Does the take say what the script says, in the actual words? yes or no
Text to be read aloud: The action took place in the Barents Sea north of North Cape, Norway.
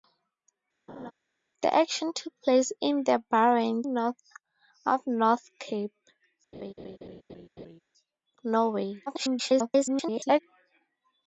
no